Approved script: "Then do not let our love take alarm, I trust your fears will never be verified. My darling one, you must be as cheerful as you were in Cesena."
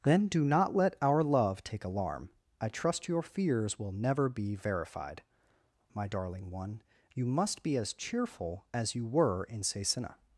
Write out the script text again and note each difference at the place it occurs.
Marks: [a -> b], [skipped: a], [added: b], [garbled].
"Then do not let our love take alarm, I trust your fears will never be verified. My darling one, you must be as cheerful as you were in Cesena."